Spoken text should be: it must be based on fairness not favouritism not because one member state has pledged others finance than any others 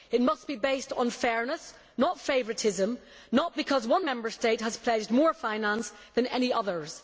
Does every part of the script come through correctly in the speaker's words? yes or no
no